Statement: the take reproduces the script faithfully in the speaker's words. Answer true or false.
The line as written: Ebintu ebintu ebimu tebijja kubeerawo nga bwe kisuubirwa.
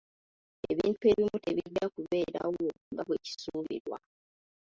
false